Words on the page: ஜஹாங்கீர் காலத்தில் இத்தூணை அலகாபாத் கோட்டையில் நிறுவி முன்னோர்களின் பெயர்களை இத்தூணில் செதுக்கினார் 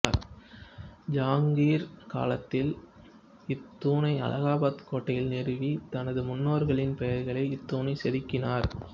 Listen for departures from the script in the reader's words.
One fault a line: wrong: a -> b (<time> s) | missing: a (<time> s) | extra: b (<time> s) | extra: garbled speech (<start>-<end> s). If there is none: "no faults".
extra: தனது (5.9 s)